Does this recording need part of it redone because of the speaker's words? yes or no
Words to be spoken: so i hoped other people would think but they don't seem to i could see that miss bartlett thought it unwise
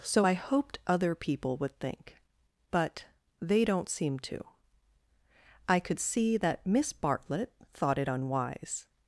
no